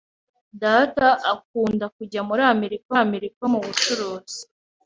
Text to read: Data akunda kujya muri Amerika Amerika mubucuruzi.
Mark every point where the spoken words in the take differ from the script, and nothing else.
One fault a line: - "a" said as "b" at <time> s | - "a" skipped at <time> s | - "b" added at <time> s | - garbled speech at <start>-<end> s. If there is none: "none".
none